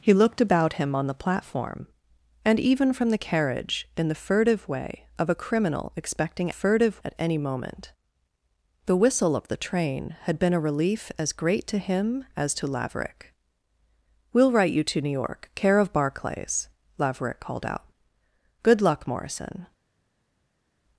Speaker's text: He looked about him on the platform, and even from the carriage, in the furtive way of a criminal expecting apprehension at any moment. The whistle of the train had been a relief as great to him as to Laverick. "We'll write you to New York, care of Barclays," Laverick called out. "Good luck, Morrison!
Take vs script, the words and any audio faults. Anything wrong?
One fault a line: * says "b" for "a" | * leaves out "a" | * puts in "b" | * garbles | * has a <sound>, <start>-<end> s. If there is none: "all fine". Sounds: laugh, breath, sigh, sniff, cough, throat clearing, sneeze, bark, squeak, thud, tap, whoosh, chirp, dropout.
* says "furtive" for "apprehension"